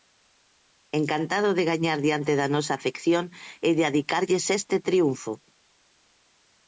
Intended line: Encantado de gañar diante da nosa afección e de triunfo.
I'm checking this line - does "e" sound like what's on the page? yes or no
yes